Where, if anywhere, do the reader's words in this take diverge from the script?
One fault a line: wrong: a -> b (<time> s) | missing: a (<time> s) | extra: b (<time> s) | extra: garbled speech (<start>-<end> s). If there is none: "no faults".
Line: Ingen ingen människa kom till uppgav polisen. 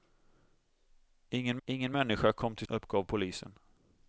no faults